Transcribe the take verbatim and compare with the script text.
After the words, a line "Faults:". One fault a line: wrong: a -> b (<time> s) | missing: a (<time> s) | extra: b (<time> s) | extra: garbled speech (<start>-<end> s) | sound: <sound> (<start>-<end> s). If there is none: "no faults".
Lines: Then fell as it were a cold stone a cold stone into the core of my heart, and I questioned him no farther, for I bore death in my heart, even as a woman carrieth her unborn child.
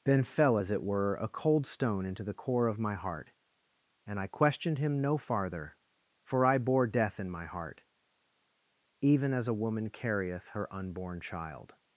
Then fell as it were a cold stone into the core of my heart, and I questioned him no farther, for I bore death in my heart, even as a woman carrieth her unborn child.
Faults:
missing: a cold stone (2.0 s)